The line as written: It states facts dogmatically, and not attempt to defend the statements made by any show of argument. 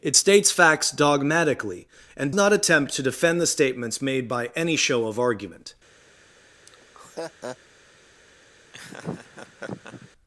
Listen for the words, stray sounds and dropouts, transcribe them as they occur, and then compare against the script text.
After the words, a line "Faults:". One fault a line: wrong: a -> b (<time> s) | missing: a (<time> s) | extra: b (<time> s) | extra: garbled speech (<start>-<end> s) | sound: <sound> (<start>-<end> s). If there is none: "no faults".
It states facts dogmatically, and not attempt to defend the statements made by any show of argument.
Faults:
sound: laugh (6.7-7.6 s)
sound: laugh (8.7-10.1 s)